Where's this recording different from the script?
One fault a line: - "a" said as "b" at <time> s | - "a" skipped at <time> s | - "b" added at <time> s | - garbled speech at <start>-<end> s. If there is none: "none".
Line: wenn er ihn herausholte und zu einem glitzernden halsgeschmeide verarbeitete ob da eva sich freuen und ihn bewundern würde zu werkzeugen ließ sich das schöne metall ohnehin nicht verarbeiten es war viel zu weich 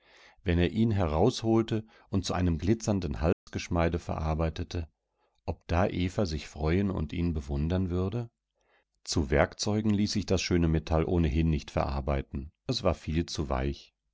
none